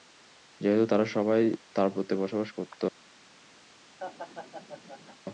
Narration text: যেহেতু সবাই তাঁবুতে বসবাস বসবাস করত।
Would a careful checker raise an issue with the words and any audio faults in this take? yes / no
yes